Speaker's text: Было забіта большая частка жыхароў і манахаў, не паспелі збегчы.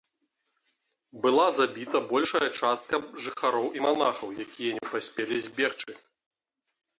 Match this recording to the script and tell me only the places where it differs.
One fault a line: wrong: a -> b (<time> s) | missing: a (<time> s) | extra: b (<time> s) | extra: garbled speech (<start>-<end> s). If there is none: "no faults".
wrong: Было -> Была (1.2 s)
extra: якія (4.4 s)